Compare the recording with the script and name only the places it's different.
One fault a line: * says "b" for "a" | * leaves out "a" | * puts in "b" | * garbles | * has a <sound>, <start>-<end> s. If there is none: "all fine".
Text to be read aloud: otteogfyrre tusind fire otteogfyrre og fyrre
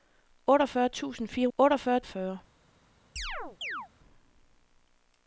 * has a chirp, 3.2-3.9 s